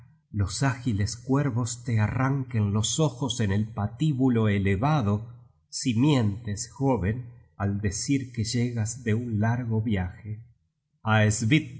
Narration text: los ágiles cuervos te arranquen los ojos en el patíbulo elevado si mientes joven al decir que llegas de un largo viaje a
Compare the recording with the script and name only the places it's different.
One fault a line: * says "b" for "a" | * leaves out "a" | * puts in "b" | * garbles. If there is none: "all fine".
all fine